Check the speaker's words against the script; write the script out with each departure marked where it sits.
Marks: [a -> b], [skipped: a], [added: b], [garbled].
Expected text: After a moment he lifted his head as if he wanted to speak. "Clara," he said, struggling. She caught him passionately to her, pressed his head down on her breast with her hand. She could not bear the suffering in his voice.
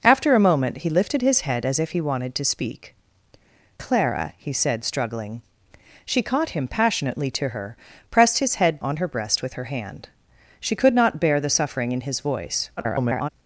After a moment he lifted his head as if he wanted to speak. "Clara," he said, struggling. She caught him passionately to her, pressed his head [skipped: down] on her breast with her hand. She could not bear the suffering in his voice. [garbled]